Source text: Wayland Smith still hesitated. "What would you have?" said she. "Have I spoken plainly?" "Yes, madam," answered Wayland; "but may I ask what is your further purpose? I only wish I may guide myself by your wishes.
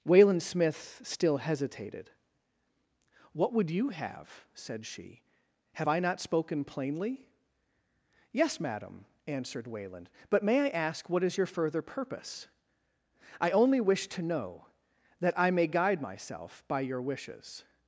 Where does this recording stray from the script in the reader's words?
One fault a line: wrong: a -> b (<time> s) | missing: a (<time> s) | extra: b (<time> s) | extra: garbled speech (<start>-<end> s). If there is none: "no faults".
extra: not (6.0 s)
extra: to know that (14.1 s)